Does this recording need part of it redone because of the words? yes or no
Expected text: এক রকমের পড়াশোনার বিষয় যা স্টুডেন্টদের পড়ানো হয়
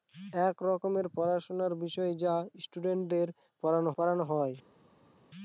yes